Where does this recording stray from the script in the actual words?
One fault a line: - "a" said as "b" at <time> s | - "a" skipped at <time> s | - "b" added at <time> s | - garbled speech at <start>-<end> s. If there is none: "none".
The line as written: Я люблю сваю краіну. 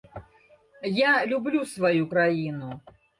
none